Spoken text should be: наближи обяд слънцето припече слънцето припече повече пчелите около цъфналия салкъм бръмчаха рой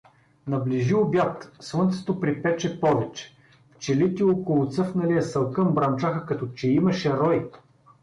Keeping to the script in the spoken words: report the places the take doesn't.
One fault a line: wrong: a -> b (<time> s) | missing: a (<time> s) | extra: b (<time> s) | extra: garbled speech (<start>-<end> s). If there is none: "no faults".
missing: слънцето припече (2.8 s)
extra: като че имаше (6.3 s)